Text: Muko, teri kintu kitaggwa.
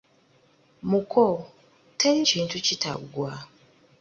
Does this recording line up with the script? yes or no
yes